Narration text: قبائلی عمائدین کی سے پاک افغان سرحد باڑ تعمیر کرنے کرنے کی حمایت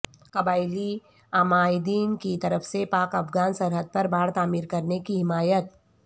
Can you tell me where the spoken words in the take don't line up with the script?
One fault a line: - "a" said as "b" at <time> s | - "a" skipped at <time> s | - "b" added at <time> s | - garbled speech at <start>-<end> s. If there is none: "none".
- "طرف" added at 2.4 s
- "پر" added at 3.9 s
- "کرنے" skipped at 5.0 s